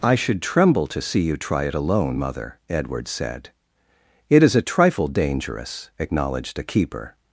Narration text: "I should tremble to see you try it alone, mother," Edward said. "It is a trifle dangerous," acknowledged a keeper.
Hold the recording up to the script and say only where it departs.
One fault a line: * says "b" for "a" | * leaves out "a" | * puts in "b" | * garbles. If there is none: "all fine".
all fine